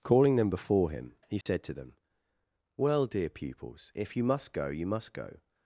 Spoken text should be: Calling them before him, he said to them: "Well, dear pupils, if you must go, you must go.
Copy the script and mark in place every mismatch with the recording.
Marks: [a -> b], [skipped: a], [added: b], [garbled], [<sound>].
Calling them before him, he said [dropout] to them: "Well, dear pupils, if you must go, you must go.